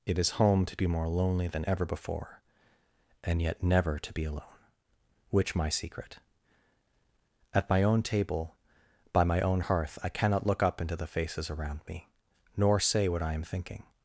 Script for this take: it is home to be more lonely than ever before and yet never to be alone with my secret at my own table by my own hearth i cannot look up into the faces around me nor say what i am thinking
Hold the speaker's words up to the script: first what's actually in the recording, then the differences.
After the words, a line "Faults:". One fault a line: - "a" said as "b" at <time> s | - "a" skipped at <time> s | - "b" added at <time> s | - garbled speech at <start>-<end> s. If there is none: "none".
it is home to be more lonely than ever before and yet never to be alone which my secret at my own table by my own hearth i cannot look up into the faces around me nor say what i am thinking
Faults:
- "with" said as "which" at 5.3 s